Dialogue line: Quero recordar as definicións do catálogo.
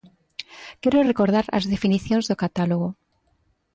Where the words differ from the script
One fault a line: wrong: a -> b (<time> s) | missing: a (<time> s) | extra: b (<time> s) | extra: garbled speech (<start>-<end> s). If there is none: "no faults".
no faults